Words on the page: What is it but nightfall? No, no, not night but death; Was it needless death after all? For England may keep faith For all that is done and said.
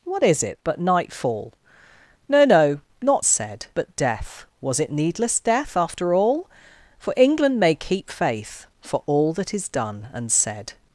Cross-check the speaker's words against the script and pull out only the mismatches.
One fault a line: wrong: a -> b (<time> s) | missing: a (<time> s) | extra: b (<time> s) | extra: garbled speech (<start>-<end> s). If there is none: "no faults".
wrong: night -> said (3.2 s)